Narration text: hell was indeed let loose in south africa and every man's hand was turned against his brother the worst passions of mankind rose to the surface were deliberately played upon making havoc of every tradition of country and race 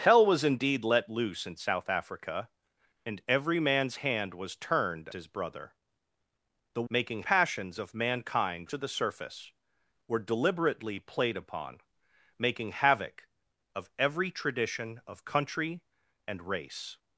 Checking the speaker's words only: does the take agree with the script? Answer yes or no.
no